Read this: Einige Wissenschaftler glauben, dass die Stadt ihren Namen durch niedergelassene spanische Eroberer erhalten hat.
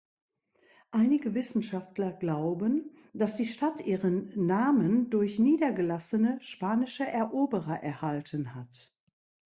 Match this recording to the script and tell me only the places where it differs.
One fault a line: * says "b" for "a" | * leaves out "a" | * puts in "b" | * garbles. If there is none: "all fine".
all fine